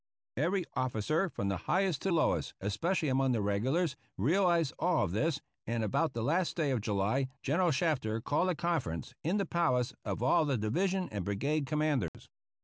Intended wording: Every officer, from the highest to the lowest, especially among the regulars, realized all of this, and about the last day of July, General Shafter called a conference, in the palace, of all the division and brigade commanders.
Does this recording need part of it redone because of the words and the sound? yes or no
yes